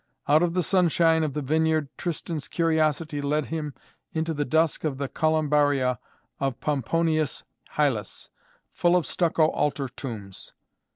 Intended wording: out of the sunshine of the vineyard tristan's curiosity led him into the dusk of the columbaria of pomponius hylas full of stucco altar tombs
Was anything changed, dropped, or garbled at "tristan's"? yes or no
no